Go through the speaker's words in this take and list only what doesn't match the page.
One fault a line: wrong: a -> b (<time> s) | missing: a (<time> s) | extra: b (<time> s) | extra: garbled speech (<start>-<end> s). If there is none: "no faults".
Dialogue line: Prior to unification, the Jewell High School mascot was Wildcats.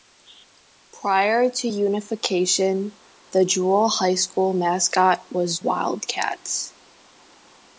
no faults